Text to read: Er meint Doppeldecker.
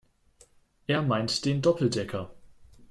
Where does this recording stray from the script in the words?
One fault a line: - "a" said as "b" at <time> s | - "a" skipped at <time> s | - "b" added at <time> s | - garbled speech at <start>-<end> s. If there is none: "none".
- "den" added at 1.4 s